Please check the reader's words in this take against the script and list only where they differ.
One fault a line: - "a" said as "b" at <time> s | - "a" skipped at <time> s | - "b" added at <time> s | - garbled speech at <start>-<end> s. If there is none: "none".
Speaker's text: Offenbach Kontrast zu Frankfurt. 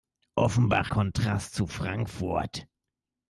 none